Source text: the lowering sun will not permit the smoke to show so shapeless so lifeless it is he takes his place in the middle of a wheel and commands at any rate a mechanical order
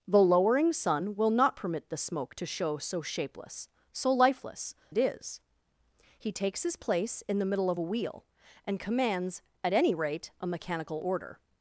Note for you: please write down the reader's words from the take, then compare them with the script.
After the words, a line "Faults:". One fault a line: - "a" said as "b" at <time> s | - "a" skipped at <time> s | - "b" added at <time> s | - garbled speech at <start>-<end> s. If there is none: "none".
the lowering sun will not permit the smoke to show so shapeless so lifeless it is he takes his place in the middle of a wheel and commands at any rate a mechanical order
Faults:
none